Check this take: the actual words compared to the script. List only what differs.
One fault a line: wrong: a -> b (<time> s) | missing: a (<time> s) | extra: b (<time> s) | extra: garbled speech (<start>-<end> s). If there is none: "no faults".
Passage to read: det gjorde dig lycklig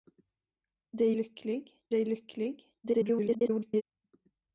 wrong: gjorde -> lycklig (1.1 s)
extra: garbled speech (2.8-3.8 s)